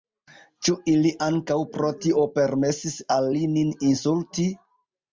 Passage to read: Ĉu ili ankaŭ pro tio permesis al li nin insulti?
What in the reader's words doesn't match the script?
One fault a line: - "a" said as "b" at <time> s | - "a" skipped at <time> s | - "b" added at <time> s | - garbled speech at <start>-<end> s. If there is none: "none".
none